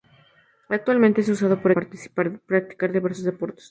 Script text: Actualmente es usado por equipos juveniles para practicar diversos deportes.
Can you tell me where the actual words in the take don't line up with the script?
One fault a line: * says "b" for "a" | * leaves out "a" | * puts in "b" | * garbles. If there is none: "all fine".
* leaves out "equipos juveniles para"